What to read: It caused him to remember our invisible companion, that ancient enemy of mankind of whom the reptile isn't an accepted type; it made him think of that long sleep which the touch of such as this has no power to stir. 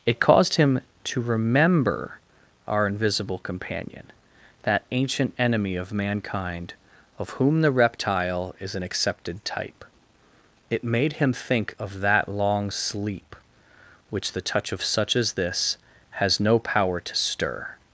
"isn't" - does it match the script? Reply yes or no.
no